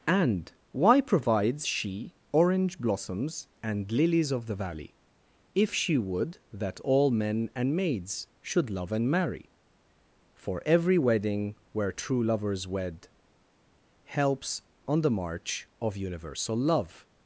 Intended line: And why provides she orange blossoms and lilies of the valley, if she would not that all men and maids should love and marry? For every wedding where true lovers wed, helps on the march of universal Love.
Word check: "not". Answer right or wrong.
wrong